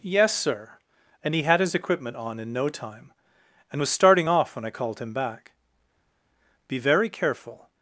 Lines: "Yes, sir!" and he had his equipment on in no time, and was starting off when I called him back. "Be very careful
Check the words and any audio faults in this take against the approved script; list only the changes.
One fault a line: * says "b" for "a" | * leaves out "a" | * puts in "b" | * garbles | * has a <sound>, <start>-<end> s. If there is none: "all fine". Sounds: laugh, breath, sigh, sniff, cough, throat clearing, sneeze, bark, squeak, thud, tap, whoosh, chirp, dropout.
all fine